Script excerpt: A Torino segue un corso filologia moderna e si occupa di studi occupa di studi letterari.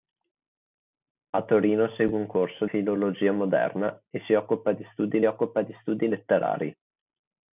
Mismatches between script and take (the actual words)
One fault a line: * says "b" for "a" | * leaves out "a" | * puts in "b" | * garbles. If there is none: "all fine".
all fine